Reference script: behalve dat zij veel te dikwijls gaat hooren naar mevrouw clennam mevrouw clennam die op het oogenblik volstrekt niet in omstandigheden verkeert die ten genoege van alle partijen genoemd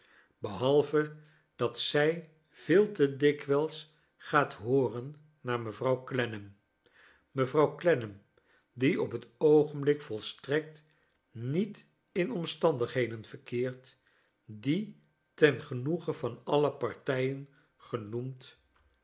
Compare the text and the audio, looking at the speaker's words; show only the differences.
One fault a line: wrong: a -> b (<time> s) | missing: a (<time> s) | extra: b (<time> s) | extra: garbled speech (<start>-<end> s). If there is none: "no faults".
no faults